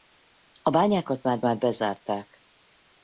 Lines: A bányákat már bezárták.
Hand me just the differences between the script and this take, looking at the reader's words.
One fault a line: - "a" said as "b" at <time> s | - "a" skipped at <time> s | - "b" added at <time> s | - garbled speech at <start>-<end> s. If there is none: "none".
- "már" added at 1.4 s